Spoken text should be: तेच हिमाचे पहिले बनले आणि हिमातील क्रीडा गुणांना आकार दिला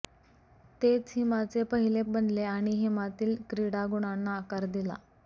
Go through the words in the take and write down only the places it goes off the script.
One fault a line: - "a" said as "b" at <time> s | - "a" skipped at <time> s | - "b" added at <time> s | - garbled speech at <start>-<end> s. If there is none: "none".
none